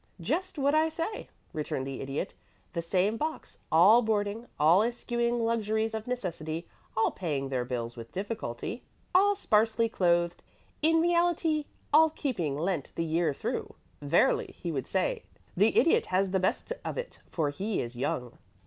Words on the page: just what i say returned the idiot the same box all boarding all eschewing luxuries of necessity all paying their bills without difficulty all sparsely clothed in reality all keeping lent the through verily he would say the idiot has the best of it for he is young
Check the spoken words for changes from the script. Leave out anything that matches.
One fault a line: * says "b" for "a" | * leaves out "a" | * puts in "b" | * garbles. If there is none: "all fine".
* says "with" for "without"
* puts in "year"